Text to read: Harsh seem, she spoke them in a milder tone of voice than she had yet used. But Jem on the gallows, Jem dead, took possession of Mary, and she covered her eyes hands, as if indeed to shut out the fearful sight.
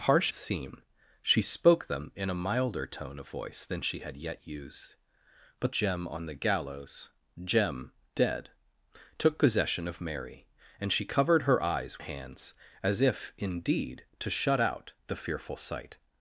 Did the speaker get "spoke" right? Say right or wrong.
right